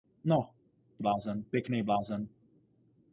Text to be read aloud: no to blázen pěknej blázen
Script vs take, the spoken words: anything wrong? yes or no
no